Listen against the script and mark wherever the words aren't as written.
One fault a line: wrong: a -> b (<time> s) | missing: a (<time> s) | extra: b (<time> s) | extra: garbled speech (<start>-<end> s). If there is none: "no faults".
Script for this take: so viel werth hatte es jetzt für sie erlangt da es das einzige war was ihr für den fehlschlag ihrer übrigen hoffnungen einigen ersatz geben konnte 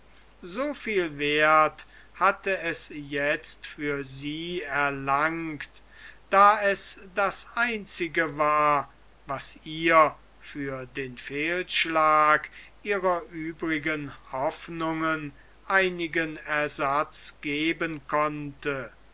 no faults